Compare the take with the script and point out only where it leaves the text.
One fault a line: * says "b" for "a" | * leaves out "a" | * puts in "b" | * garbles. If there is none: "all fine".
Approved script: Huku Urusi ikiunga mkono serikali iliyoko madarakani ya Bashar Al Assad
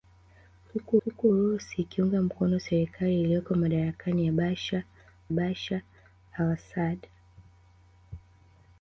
* puts in "huku"
* puts in "Bashar"